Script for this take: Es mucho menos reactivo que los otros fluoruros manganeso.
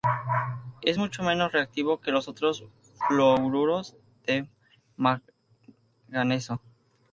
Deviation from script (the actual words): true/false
true